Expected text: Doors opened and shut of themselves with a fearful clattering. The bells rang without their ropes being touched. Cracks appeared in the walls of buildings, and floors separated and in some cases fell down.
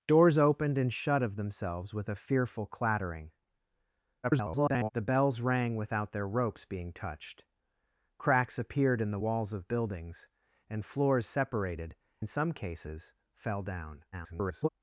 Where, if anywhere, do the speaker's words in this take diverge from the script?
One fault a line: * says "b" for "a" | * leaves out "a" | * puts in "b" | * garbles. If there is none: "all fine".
* garbles
* leaves out "and"
* garbles